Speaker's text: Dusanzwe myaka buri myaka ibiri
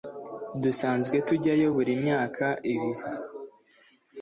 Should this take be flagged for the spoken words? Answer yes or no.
yes